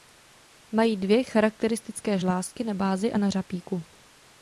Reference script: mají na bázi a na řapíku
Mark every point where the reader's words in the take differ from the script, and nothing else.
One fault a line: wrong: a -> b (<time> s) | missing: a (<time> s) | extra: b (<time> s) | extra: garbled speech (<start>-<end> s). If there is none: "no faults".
extra: dvě charakteristické žlázky (1.0 s)